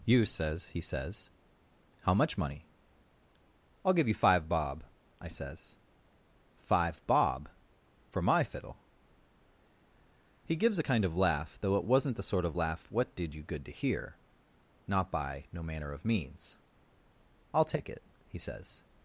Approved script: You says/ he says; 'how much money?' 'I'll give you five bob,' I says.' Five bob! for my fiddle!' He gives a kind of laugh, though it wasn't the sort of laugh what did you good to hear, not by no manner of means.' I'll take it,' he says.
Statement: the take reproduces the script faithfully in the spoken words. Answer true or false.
true